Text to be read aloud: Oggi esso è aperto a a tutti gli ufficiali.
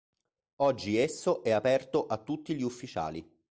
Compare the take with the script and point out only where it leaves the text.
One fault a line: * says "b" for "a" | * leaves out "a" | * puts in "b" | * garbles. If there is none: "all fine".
* leaves out "a"